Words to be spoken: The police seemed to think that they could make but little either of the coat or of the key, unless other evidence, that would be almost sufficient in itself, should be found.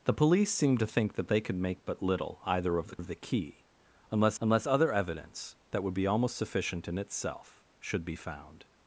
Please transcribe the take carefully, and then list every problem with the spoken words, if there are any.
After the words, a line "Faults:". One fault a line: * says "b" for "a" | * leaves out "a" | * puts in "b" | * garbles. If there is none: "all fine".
The police seemed to think that they could make but little either of the of the key, unless unless other evidence, that would be almost sufficient in itself, should be found.
Faults:
* leaves out "coat or"
* puts in "unless"